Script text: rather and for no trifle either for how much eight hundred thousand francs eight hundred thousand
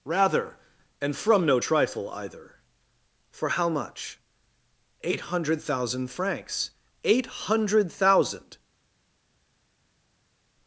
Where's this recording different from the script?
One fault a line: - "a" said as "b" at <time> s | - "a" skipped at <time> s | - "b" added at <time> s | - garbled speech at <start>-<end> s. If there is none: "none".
- "for" said as "from" at 1.1 s